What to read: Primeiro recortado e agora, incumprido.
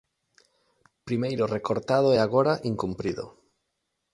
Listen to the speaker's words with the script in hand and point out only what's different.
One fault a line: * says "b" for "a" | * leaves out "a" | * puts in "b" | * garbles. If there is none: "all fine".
all fine